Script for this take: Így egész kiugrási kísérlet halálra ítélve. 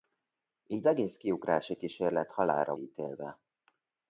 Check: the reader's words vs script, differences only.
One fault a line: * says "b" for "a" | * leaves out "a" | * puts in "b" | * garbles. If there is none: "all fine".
all fine